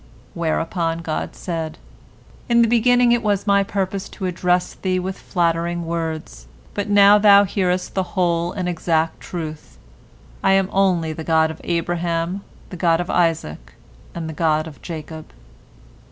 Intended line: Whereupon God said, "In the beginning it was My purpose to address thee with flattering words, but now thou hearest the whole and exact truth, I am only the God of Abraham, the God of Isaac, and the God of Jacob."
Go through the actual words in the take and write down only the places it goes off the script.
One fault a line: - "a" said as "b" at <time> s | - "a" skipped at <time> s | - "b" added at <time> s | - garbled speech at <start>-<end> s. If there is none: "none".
none